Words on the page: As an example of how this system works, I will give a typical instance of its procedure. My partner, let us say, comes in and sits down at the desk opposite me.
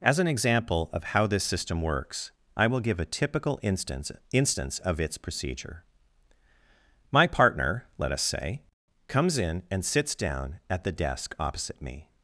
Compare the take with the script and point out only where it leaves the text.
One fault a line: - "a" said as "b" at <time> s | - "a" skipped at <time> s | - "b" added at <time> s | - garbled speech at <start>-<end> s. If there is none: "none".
- "instance" added at 4.3 s